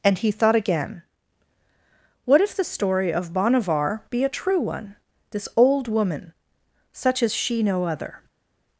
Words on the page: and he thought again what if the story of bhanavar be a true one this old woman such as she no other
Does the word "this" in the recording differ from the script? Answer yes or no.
no